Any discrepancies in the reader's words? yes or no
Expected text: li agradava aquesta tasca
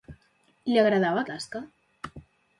yes